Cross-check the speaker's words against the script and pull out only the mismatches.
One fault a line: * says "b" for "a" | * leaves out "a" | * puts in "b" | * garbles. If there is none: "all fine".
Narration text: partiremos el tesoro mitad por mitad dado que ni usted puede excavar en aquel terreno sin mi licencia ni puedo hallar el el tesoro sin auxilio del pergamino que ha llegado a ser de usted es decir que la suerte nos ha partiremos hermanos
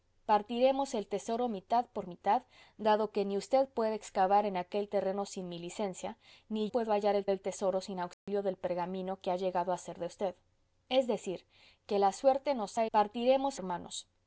all fine